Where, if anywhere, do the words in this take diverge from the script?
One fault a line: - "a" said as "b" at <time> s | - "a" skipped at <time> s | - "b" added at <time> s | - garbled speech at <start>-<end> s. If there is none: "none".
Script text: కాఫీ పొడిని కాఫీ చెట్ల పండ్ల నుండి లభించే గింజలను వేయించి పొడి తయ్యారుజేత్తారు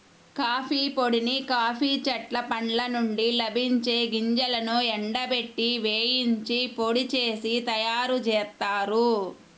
- "ఎండబెట్టి" added at 5.0 s
- "చేసి" added at 7.1 s